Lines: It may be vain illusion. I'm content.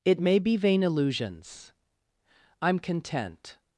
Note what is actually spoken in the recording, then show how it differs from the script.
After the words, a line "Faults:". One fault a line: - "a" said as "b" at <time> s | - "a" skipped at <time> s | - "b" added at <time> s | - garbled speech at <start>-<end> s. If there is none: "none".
It may be vain illusions. I'm content.
Faults:
- "illusion" said as "illusions" at 0.8 s